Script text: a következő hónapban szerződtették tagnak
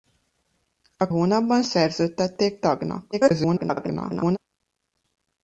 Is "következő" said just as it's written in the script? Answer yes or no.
no